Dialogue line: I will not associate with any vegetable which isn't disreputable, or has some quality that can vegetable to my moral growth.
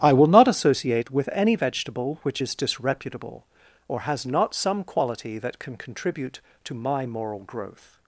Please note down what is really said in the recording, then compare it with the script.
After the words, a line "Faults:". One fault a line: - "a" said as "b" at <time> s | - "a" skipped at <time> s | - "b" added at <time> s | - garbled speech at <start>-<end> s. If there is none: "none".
I will not associate with any vegetable which is disreputable, or has not some quality that can contribute to my moral growth.
Faults:
- "isn't" said as "is" at 2.4 s
- "not" added at 4.2 s
- "vegetable" said as "contribute" at 5.8 s